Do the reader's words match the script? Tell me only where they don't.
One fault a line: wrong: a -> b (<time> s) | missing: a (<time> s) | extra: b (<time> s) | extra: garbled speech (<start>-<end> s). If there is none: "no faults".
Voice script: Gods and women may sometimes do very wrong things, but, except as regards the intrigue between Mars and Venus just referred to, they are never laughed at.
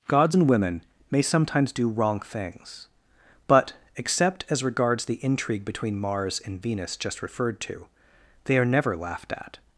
missing: very (1.9 s)